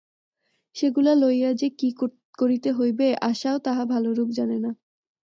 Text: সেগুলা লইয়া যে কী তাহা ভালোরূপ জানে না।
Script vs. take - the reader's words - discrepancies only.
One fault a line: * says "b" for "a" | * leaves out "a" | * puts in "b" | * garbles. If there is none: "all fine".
* puts in "করিতে হইবে আশাও"